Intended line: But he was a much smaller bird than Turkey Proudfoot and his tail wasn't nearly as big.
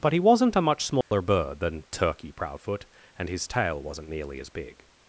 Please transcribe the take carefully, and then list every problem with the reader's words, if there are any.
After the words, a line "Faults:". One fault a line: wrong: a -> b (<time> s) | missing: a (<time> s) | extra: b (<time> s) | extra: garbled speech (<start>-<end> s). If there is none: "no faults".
But he wasn't a much smaller bird than Turkey Proudfoot and his tail wasn't nearly as big.
Faults:
wrong: was -> wasn't (0.2 s)